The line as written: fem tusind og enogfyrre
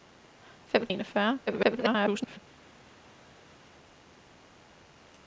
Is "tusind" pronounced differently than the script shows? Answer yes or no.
yes